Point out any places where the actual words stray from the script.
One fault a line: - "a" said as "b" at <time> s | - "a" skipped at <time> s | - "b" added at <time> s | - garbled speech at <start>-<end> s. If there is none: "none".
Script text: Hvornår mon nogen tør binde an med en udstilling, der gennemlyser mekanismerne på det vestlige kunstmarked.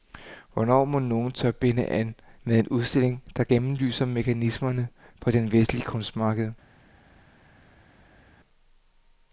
none